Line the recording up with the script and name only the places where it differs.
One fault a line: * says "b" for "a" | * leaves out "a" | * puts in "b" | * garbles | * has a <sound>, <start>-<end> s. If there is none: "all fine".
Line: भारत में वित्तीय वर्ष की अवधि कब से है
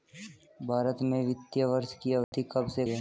* has a dropout, 2.2-2.3 s